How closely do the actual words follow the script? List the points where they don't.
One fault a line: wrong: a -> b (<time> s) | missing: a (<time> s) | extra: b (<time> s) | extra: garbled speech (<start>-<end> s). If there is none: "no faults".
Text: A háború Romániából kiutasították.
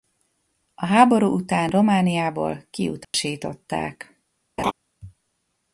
extra: után (1.3 s)